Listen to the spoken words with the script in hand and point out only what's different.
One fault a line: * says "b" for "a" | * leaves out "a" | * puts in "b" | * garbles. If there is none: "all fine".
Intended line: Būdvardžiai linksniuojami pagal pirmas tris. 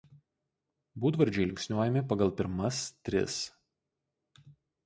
all fine